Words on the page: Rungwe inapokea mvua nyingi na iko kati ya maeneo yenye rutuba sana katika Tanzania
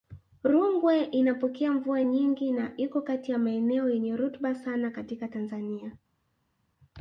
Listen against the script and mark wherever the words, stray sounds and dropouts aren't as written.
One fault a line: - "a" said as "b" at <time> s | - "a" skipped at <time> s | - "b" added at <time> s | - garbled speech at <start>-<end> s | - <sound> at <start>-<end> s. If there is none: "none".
none